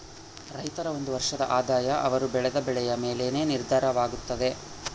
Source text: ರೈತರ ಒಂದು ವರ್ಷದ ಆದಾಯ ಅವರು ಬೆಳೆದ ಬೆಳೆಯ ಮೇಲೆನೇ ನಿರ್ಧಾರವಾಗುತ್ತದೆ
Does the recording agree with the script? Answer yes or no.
yes